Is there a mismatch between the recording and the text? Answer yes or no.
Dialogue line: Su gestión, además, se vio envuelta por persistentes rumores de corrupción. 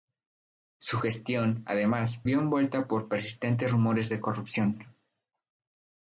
yes